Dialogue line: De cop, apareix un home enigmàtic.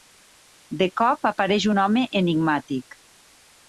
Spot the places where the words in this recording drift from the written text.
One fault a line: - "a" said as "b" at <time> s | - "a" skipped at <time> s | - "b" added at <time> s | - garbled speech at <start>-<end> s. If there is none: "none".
none